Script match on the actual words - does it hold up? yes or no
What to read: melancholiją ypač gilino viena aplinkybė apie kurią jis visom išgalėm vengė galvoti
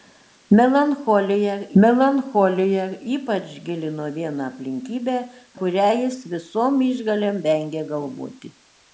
no